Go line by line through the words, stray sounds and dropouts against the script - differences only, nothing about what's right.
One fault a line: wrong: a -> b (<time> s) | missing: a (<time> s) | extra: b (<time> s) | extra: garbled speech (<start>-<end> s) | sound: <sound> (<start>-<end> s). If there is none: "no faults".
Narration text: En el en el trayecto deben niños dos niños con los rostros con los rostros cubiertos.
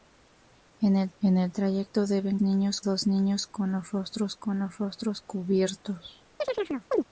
sound: chirp (6.4-7.0 s)